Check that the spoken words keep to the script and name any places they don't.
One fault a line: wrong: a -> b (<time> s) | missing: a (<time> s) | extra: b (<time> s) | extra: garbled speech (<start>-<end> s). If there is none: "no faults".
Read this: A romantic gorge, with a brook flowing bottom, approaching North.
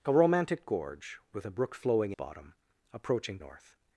no faults